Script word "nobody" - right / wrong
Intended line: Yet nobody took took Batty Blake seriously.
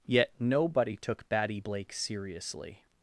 right